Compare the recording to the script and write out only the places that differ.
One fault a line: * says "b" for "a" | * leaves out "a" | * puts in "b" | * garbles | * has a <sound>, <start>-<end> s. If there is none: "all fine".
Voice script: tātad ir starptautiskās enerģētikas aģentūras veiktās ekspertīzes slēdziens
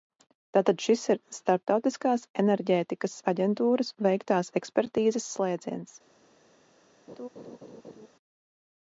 * puts in "šis"
* has a laugh, 7.1-8.1 s